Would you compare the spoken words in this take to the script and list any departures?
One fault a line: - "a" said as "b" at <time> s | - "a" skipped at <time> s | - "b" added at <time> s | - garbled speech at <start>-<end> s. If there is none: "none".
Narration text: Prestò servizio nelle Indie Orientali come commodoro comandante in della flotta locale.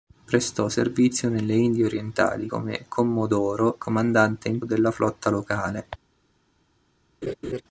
none